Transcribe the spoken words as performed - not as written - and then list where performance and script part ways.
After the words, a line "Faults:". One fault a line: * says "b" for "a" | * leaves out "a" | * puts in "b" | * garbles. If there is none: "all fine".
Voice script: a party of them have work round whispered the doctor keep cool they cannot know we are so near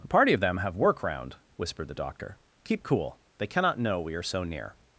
a party of them have work round whispered the doctor keep cool they cannot know we are so near
Faults:
all fine